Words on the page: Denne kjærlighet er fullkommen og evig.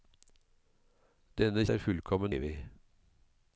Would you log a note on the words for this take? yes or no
yes